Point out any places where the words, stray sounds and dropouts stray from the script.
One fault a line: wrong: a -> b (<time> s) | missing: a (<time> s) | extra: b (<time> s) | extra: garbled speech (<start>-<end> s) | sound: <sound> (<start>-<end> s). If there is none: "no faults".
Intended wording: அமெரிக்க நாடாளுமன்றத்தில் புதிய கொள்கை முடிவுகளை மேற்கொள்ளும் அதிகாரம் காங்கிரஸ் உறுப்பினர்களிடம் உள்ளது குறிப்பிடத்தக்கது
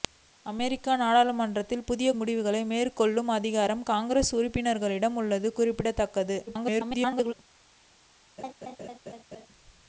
missing: கொள்கை (2.1 s)
extra: garbled speech (6.5-7.3 s)
sound: laugh (8.4-9.5 s)